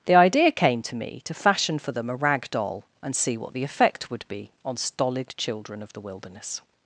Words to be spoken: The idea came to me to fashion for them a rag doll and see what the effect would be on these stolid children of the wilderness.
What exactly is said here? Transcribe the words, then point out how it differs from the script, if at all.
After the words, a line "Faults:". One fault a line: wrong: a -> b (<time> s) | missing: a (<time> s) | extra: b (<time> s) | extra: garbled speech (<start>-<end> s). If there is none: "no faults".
The idea came to me to fashion for them a rag doll and see what the effect would be on stolid children of the wilderness.
Faults:
missing: these (4.8 s)